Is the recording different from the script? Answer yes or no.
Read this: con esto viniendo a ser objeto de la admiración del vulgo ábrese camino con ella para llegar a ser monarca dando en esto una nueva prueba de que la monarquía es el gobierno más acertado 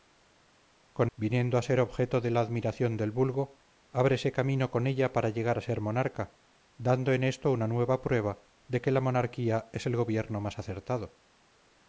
yes